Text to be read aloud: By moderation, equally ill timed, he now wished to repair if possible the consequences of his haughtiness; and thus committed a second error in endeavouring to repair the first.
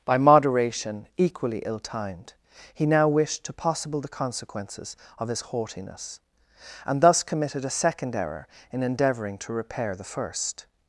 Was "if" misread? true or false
true